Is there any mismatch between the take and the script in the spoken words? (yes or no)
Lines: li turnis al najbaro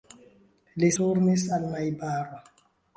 no